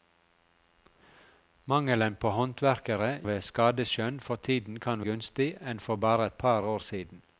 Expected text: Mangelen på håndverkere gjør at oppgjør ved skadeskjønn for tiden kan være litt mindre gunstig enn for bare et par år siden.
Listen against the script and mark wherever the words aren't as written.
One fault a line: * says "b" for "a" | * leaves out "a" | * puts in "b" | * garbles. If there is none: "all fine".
* leaves out "gjør at oppgjør"
* leaves out "være litt mindre"